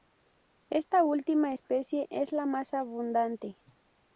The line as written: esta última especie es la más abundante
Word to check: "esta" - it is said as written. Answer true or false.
true